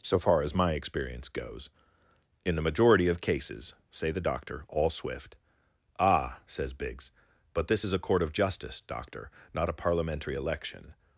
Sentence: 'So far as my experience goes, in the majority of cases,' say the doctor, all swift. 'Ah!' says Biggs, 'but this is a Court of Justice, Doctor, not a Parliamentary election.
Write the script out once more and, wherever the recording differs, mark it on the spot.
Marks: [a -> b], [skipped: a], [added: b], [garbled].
'So far as my experience goes, in the majority of cases,' say the doctor, all swift. 'Ah!' says Biggs, 'but this is a Court of Justice, Doctor, not a Parliamentary election.